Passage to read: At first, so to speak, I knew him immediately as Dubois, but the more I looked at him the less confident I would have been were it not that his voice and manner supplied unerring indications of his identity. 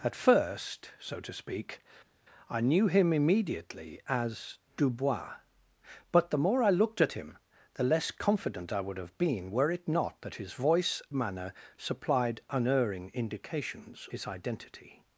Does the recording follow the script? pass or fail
fail